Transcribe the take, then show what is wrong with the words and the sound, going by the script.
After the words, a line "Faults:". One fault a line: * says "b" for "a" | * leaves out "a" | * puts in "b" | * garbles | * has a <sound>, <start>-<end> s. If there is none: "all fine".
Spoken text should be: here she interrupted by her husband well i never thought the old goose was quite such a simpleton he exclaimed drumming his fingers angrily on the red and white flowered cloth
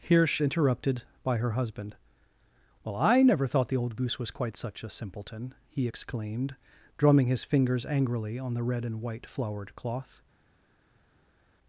here she interrupted by her husband well i never thought the old goose was quite such a simpleton he exclaimed drumming his fingers angrily on the red and white flowered cloth
Faults:
all fine